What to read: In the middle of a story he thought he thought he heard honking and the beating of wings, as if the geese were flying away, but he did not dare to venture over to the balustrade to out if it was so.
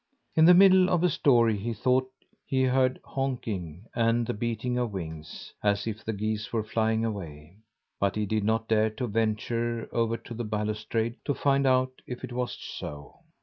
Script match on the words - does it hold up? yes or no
no